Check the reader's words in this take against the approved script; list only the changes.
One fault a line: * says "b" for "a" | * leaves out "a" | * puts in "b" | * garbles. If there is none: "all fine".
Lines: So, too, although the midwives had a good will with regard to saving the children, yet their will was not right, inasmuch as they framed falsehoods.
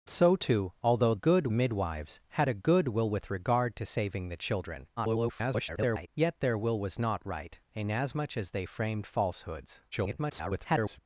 * says "good" for "the"
* garbles
* garbles